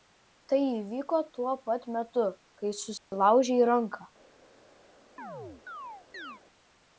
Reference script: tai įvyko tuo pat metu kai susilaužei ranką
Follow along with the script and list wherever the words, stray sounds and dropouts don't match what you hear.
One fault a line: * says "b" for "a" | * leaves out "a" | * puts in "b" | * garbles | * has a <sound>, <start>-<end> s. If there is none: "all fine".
* has a dropout, 3.0-3.1 s
* has a chirp, 5.2-6.4 s